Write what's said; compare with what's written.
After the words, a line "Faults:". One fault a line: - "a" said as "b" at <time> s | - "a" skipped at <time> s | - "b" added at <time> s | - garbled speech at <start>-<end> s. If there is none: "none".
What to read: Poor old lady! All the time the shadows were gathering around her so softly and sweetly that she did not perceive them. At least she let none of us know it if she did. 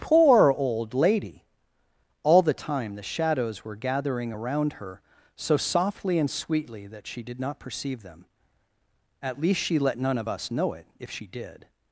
Poor old lady! All the time the shadows were gathering around her so softly and sweetly that she did not perceive them. At least she let none of us know it if she did.
Faults:
none